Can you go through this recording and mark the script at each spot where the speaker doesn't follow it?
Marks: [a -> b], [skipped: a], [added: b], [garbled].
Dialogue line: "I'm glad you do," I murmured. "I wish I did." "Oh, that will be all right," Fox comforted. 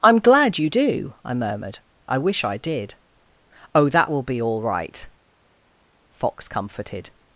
"I'm glad you do," I murmured. "I wish I did." "Oh, that will be all right," Fox comforted.